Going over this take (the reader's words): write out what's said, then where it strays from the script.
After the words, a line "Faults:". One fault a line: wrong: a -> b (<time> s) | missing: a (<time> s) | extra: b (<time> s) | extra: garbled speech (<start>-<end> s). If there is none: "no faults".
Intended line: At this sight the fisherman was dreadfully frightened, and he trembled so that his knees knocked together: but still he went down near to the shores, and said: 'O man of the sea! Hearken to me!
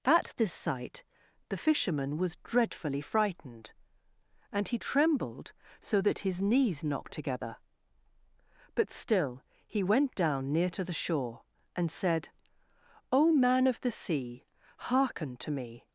At this sight the fisherman was dreadfully frightened, and he trembled so that his knees knocked together: but still he went down near to the shore, and said: 'O man of the sea! Hearken to me!
Faults:
wrong: shores -> shore (10.9 s)